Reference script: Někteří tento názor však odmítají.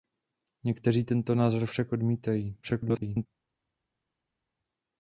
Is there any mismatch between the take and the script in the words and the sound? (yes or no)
yes